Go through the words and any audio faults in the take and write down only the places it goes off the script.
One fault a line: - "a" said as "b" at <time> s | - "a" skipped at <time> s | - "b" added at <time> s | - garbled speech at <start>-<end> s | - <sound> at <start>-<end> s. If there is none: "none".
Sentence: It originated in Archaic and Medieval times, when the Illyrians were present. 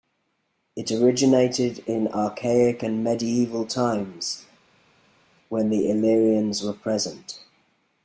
none